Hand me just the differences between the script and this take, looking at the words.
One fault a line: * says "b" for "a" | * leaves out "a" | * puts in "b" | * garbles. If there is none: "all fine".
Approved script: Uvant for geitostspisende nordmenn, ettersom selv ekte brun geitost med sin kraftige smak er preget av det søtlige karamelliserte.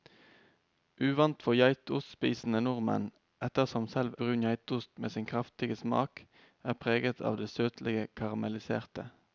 * leaves out "ekte"